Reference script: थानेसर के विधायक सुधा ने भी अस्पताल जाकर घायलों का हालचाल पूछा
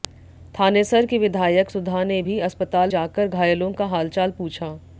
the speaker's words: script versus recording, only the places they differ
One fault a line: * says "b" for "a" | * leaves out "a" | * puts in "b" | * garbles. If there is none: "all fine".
all fine